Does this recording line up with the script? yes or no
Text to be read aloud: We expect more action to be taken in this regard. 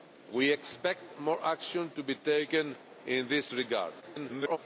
no